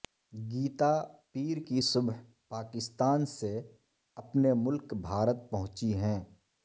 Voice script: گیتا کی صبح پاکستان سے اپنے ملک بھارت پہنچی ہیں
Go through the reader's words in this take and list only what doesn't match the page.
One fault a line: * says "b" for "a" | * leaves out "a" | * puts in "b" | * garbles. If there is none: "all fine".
* puts in "پیر"